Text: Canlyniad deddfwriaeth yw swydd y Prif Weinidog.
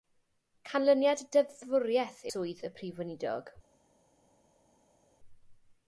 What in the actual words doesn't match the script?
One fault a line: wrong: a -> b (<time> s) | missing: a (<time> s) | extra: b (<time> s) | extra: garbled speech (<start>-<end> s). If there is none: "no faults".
missing: yw (2.2 s)